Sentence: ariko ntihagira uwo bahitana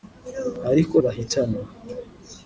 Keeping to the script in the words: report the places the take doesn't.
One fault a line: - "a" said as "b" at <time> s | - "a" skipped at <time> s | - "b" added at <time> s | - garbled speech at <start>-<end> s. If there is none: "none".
- "ntihagira uwo" skipped at 0.9 s